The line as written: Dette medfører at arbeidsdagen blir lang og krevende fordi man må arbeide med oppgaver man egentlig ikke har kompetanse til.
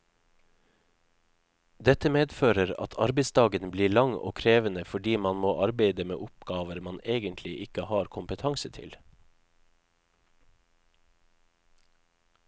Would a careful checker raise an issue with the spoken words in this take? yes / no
no